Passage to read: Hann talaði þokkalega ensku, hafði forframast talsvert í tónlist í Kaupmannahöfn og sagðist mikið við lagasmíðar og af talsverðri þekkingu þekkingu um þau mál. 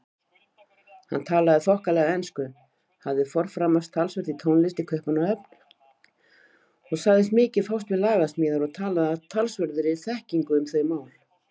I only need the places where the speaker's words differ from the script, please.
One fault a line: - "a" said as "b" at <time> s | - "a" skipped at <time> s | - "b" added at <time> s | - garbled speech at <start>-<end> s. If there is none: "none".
- "fást" added at 7.7 s
- "talaði" added at 8.8 s
- "þekkingu" skipped at 10.6 s